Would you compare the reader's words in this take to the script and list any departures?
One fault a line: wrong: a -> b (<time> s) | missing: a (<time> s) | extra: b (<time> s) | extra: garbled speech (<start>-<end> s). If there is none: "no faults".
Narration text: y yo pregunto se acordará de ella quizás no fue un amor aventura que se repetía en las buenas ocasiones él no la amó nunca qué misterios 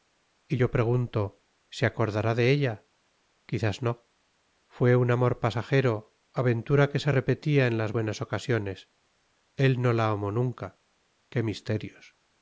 extra: pasajero (5.4 s)